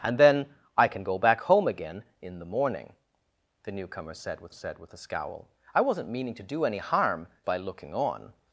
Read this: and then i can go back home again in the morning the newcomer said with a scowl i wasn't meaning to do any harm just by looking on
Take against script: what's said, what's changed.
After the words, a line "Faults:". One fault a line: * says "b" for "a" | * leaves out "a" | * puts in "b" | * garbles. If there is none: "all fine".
and then i can go back home again in the morning the newcomer said with said with a scowl i wasn't meaning to do any harm by looking on
Faults:
* puts in "said with"
* leaves out "just"